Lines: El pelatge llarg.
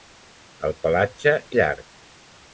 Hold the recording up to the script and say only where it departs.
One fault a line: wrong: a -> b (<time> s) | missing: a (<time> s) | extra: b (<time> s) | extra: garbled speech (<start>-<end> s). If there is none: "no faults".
no faults